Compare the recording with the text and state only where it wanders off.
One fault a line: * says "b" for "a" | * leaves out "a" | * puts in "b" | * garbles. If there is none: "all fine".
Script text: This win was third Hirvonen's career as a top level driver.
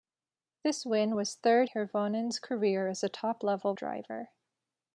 all fine